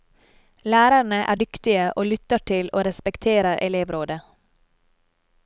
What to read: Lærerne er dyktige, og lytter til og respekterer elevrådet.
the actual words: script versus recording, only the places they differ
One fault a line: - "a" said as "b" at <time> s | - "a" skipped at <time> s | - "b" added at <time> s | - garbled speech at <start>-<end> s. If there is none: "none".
none